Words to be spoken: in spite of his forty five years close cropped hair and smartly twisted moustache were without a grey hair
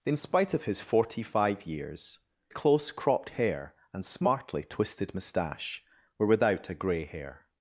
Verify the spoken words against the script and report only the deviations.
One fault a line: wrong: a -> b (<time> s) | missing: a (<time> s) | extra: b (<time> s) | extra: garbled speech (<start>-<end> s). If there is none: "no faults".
no faults